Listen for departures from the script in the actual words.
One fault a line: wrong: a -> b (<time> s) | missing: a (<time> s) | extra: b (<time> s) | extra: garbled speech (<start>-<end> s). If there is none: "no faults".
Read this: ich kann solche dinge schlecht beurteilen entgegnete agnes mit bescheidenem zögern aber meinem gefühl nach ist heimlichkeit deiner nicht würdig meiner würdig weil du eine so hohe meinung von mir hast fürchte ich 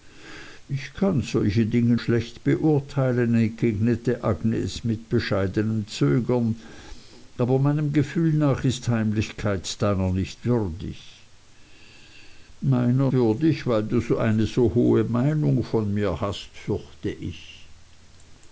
no faults